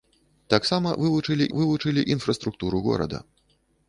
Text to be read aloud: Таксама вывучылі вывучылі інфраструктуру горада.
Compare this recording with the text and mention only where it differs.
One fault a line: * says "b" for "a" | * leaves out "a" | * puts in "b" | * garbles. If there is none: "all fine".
all fine